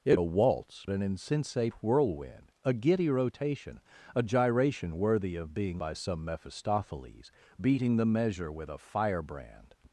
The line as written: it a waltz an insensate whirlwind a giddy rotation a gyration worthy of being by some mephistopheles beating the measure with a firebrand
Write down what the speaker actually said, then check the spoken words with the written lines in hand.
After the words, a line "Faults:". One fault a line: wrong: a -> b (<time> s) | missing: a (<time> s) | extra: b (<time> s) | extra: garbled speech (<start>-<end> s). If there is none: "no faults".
it a waltz an insensate whirlwind a giddy rotation a gyration worthy of being by some mephistopheles beating the measure with a firebrand
Faults:
no faults